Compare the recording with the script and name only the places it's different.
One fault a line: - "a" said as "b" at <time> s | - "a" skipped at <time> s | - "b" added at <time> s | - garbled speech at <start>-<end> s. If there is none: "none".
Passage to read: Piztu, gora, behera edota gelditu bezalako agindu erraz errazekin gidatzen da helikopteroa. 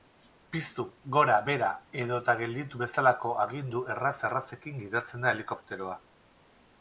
none